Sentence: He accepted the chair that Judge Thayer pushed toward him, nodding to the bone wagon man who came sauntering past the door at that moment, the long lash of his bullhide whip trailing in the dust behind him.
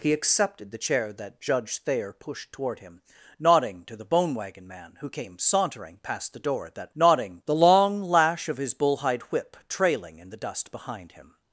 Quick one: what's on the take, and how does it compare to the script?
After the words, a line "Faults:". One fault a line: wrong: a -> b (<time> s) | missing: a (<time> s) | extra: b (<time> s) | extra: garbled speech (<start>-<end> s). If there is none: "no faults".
He accepted the chair that Judge Thayer pushed toward him, nodding to the bone wagon man who came sauntering past the door at that nodding, the long lash of his bullhide whip trailing in the dust behind him.
Faults:
wrong: moment -> nodding (6.9 s)